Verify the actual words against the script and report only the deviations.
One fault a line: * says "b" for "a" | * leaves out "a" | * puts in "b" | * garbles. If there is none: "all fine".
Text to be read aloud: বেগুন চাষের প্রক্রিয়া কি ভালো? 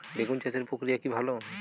all fine